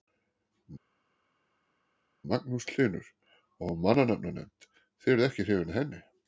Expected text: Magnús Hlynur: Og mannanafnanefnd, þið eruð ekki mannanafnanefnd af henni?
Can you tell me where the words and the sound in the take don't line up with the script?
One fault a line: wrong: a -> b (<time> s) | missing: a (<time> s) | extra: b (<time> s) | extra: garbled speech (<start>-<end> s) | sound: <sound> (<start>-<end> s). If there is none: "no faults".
wrong: mannanafnanefnd -> hrifin (5.5 s)